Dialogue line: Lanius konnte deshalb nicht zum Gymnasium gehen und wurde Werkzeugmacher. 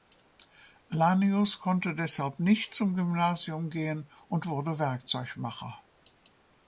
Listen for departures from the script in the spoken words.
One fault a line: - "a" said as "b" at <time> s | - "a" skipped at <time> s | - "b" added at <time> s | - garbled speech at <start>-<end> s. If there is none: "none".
none